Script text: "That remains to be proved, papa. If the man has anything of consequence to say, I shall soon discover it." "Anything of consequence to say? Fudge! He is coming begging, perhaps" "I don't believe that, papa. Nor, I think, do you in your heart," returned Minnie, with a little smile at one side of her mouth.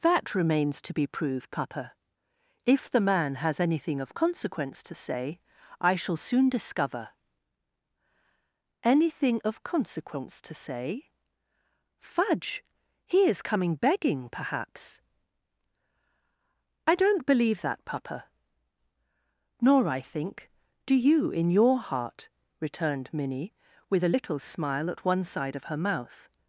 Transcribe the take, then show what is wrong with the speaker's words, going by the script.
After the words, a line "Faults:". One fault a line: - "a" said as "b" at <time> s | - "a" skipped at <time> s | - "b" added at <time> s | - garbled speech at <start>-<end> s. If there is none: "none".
"That remains to be proved, papa. If the man has anything of consequence to say, I shall soon discover." "Anything of consequence to say? Fudge! He is coming begging, perhaps" "I don't believe that, papa. Nor, I think, do you in your heart," returned Minnie, with a little smile at one side of her mouth.
Faults:
- "it" skipped at 7.1 s